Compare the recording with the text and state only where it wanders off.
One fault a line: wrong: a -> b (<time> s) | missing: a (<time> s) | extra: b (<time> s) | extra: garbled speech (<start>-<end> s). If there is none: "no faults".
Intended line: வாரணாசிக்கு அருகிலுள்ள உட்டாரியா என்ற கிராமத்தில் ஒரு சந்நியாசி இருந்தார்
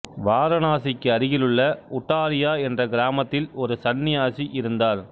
no faults